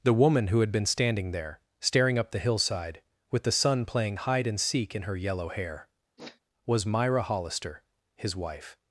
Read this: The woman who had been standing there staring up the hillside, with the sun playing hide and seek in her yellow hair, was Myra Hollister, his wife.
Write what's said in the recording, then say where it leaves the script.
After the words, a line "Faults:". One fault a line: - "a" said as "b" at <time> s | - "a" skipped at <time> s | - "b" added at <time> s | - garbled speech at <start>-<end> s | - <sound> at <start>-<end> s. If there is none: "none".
The woman who had been standing there staring up the hillside, with the sun playing hide and seek in her yellow hair, was Myra Hollister, his wife.
Faults:
- sniff at 6.2-6.4 s